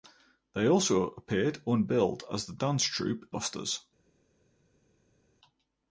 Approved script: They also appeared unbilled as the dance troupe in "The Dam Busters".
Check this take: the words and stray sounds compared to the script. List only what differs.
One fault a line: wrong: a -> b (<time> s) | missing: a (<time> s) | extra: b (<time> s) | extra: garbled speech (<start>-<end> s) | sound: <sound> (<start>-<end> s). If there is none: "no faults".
missing: in The Dam (3.3 s)